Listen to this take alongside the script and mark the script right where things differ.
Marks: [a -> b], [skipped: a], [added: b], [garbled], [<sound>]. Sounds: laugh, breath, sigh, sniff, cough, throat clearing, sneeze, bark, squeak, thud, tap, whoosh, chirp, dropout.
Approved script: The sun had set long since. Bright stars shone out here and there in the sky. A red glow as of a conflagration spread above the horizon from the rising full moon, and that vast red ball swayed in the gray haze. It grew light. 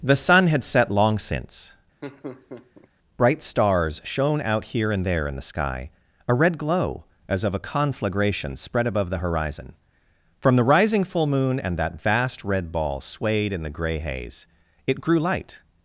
The sun had set long since. [laugh] Bright stars shone out here and there in the sky. A red glow as of a conflagration spread above the horizon from the rising full moon, and that vast red ball swayed in the gray haze. It grew light.